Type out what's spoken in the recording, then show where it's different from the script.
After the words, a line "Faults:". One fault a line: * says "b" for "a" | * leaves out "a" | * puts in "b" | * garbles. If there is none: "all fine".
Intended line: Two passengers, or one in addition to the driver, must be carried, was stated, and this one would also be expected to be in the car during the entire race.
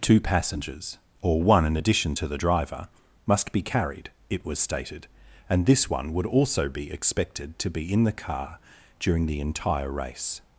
Two passengers, or one in addition to the driver, must be carried, it was stated, and this one would also be expected to be in the car during the entire race.
Faults:
* puts in "it"